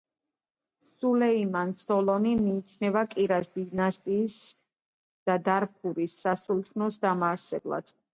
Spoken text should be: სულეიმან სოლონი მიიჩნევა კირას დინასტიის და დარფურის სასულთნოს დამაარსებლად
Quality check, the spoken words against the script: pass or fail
pass